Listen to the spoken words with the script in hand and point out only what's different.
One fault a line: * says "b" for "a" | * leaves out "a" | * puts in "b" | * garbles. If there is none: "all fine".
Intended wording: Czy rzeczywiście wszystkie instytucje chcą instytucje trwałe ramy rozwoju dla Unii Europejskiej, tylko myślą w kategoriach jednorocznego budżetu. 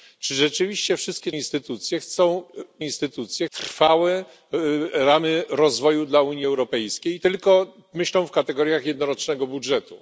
all fine